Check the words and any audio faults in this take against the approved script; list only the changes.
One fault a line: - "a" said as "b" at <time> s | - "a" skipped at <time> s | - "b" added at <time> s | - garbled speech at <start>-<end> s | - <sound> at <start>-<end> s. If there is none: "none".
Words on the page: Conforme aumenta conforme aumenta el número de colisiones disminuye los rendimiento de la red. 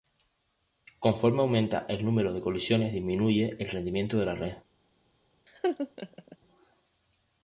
- "conforme aumenta" skipped at 1.9 s
- "los" said as "el" at 3.6 s
- laugh at 5.5-6.4 s